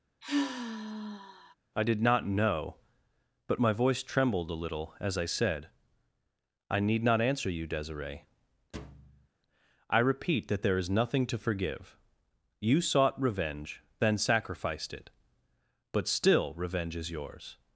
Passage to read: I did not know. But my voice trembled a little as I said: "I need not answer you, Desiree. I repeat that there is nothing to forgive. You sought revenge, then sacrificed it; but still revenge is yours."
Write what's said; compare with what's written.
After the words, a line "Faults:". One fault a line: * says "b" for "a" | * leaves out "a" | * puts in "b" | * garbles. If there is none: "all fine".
I did not know. But my voice trembled a little as I said: "I need not answer you, Desiree. I repeat that there is nothing to forgive. You sought revenge, then sacrificed it; but still revenge is yours."
Faults:
all fine